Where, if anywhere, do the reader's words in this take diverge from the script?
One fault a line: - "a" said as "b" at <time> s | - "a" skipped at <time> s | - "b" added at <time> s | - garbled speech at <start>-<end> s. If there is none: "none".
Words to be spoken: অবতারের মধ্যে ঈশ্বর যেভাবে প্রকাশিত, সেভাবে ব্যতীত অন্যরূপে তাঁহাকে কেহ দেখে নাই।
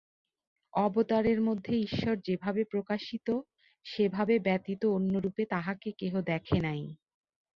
none